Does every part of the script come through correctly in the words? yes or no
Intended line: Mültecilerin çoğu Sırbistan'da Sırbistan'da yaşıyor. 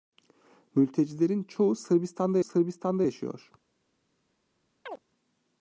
yes